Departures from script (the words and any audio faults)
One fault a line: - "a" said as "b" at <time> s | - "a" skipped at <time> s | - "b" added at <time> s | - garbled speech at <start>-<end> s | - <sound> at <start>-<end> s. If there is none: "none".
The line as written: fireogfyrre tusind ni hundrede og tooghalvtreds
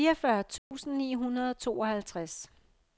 - dropout at 0.6-0.7 s